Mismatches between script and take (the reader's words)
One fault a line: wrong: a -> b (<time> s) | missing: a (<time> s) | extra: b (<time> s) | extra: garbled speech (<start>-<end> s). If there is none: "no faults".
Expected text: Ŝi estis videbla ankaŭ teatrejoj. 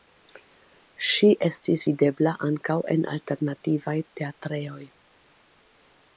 extra: en alternativaj (3.0 s)